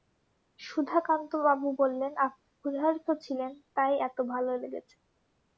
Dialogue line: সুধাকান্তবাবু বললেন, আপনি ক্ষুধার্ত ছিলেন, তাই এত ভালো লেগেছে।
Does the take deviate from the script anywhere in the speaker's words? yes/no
no